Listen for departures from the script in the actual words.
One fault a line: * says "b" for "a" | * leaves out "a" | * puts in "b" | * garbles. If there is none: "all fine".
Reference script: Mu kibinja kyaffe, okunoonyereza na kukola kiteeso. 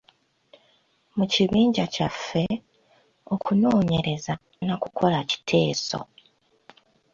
all fine